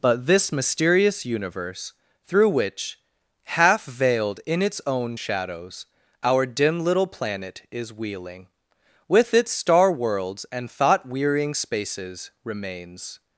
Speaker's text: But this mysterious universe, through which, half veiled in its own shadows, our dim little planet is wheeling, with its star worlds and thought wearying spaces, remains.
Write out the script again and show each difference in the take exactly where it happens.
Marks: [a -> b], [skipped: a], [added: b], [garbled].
But this mysterious universe, through which, half veiled in its own shadows, our dim little planet is wheeling, with its star worlds and thought wearying spaces, remains.